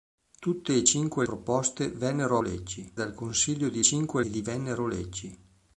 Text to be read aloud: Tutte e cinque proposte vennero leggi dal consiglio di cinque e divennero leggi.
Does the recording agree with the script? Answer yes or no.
yes